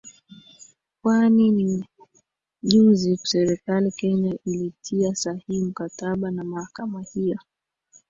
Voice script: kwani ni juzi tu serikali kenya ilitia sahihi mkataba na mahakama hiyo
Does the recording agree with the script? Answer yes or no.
no